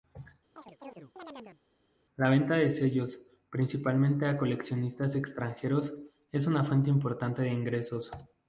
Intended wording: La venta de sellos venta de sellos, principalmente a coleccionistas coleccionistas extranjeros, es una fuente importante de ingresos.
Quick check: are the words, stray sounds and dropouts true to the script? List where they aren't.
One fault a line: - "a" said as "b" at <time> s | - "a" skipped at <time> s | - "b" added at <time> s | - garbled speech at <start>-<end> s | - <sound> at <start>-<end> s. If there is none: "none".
- chirp at 0.6-1.6 s
- "venta de sellos" skipped at 3.2 s
- "coleccionistas" skipped at 5.2 s